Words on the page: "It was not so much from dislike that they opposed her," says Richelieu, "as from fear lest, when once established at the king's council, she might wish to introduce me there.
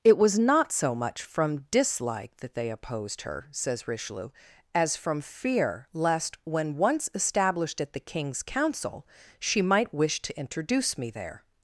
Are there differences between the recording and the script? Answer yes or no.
no